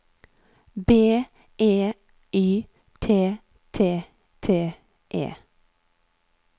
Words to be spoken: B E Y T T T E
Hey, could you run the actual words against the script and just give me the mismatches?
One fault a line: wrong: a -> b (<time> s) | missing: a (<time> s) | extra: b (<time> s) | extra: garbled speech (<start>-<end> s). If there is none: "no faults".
no faults